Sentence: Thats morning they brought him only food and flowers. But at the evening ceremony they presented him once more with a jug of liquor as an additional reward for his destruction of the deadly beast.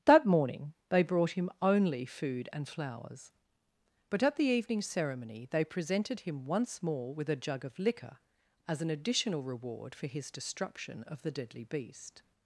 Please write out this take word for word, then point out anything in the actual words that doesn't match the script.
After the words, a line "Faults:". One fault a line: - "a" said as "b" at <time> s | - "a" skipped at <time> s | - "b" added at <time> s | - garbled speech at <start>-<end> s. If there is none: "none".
That morning they brought him only food and flowers. But at the evening ceremony they presented him once more with a jug of liquor as an additional reward for his destruction of the deadly beast.
Faults:
- "Thats" said as "That" at 0.1 s